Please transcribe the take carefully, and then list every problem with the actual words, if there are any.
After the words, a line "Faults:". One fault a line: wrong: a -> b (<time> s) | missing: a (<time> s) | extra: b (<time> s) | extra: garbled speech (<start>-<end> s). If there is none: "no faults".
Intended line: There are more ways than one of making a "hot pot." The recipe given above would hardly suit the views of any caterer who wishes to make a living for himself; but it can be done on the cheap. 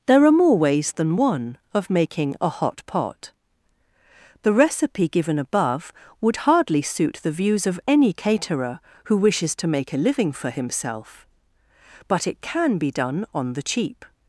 There are more ways than one of making a "hot pot." The recipe given above would hardly suit the views of any caterer who wishes to make a living for himself; but it can be done on the cheap.
Faults:
no faults